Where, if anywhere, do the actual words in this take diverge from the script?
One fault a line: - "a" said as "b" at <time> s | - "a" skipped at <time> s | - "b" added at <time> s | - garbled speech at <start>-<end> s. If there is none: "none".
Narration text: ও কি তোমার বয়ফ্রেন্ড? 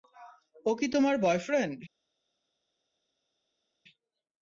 none